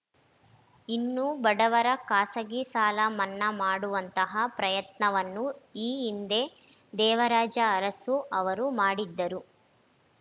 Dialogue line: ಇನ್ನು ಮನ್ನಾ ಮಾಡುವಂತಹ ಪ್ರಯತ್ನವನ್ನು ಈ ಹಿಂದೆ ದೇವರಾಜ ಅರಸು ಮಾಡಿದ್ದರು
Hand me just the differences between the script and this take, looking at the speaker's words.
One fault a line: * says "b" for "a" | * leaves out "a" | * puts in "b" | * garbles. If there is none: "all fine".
* puts in "ಬಡವರ ಖಾಸಗಿ ಸಾಲ"
* puts in "ಅವರು"